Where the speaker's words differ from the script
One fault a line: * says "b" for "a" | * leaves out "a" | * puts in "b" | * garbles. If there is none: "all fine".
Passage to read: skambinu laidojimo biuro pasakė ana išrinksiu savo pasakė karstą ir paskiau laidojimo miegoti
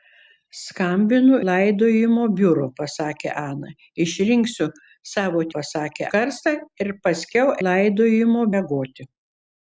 all fine